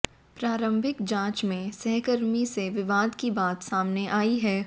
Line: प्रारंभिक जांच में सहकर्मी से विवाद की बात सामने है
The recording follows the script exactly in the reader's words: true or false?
false